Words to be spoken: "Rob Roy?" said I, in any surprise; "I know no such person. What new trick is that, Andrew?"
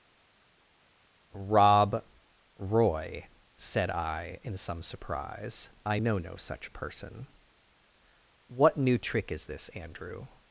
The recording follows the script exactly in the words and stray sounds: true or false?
false